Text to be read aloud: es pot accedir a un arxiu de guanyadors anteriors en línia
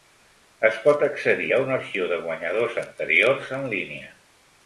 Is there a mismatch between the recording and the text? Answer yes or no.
no